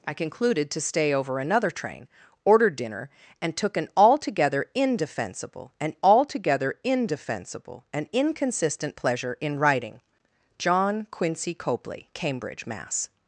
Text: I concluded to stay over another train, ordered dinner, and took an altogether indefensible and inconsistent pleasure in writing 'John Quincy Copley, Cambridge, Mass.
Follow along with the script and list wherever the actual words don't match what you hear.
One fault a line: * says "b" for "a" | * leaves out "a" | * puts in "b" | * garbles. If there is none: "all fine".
* puts in "altogether indefensible and"